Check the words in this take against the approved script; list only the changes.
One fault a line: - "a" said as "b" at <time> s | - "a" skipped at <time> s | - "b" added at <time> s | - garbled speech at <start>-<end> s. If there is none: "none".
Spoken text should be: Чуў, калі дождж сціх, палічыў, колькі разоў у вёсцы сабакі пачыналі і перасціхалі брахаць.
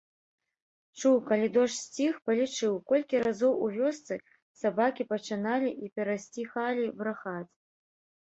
none